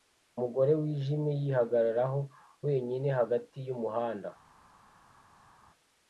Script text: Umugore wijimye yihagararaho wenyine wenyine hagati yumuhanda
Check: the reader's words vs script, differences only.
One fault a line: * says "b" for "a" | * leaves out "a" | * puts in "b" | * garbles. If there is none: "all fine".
* leaves out "wenyine"